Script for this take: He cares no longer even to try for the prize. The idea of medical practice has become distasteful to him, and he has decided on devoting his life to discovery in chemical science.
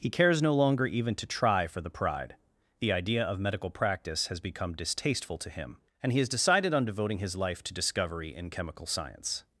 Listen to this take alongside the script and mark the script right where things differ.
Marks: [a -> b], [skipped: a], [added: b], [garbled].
He cares no longer even to try for the [prize. -> pride] The idea of medical practice has become distasteful to him, and he has decided on devoting his life to discovery in chemical science.